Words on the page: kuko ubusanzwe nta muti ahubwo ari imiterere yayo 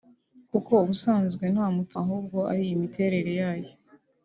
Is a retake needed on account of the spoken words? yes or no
no